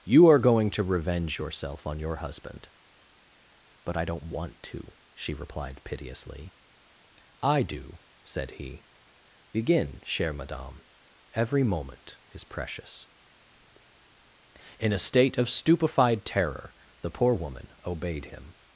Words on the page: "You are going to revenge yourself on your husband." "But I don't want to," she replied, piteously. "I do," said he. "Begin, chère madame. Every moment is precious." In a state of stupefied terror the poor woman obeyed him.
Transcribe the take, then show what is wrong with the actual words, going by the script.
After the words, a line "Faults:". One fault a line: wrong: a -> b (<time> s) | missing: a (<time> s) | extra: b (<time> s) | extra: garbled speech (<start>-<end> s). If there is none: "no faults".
"You are going to revenge yourself on your husband." "But I don't want to," she replied, piteously. "I do," said he. "Begin, chère madame. Every moment is precious." In a state of stupefied terror the poor woman obeyed him.
Faults:
no faults